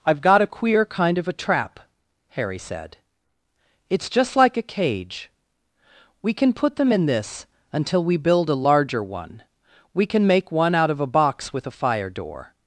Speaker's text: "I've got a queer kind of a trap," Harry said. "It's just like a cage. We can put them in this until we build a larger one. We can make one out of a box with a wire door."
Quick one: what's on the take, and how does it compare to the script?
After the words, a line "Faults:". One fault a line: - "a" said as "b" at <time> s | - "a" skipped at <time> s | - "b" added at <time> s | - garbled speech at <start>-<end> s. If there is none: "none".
"I've got a queer kind of a trap," Harry said. "It's just like a cage. We can put them in this until we build a larger one. We can make one out of a box with a fire door."
Faults:
- "wire" said as "fire" at 11.7 s